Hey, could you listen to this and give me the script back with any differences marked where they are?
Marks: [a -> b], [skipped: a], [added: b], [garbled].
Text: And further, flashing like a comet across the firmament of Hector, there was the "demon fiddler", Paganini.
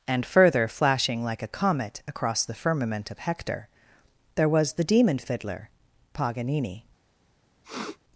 And further, flashing like a comet across the firmament of Hector, there was the "demon fiddler", Paganini.